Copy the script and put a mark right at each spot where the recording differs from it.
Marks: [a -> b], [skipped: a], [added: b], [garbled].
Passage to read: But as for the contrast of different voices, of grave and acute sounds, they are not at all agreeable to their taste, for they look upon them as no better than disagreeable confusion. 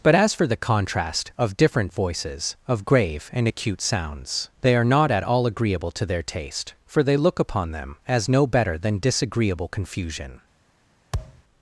But as for the contrast of different voices, of grave and acute sounds, they are not at all agreeable to their taste, for they look upon them as no better than disagreeable confusion.